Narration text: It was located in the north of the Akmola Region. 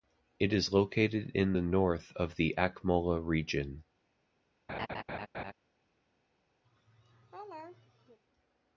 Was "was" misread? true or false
true